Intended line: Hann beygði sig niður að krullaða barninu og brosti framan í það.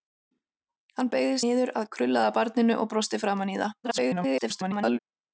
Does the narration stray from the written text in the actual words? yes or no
yes